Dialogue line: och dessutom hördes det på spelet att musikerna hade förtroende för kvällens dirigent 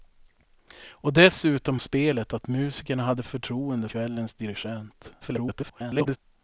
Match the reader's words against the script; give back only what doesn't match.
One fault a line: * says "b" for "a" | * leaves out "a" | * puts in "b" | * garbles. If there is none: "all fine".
* leaves out "hördes det på"
* leaves out "för"
* garbles